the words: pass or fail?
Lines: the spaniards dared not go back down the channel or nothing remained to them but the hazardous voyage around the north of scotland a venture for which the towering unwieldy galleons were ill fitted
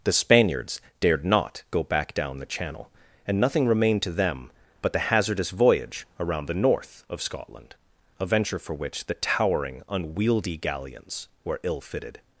fail